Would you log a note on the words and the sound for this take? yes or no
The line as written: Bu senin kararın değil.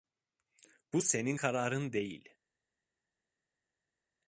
no